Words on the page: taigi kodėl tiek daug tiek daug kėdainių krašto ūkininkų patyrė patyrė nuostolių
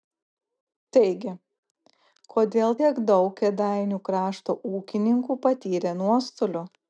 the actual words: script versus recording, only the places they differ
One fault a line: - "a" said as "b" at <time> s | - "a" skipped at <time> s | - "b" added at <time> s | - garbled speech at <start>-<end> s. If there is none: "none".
- "tiek daug" skipped at 3.3 s
- "patyrė" skipped at 6.0 s